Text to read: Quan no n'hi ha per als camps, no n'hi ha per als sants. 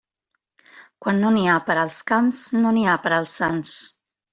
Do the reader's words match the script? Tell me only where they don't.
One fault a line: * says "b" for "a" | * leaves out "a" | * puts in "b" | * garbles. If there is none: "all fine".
all fine